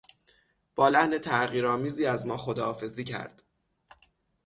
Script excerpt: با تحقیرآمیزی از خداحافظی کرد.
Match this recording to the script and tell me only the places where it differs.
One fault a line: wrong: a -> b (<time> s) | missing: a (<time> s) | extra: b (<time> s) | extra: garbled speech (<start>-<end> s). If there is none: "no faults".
extra: لحن (0.9 s)
extra: ما (2.3 s)